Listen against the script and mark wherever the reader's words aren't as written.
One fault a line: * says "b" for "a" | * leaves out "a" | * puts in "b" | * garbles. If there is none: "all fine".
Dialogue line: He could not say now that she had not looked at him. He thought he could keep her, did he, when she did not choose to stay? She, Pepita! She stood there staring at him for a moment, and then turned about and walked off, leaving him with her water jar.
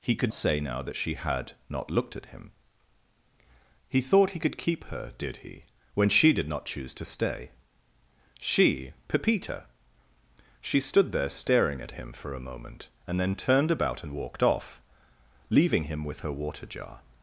* leaves out "not"